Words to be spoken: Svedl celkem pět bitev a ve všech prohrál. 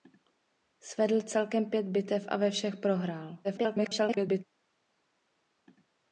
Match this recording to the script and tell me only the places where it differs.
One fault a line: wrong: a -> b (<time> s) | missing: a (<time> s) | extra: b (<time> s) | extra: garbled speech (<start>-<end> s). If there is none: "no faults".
extra: garbled speech (3.4-4.4 s)